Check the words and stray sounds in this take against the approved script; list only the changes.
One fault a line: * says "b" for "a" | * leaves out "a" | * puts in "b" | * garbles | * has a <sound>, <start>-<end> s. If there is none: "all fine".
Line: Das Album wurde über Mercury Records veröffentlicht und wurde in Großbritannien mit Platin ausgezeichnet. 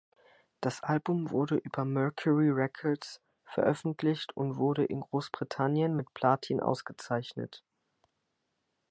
all fine